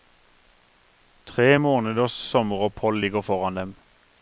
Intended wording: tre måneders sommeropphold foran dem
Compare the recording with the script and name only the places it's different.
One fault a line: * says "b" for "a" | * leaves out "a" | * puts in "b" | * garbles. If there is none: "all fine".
* puts in "ligger"